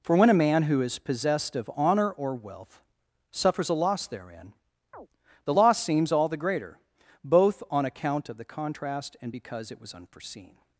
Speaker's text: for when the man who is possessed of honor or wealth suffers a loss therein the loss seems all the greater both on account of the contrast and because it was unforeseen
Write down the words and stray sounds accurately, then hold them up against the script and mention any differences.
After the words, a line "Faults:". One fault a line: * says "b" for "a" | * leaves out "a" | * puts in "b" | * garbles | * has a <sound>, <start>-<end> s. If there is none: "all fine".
for when a man who is possessed of honor or wealth suffers a loss therein the loss seems all the greater both on account of the contrast and because it was unforeseen
Faults:
* says "a" for "the"
* has a chirp, 4.9-5.1 s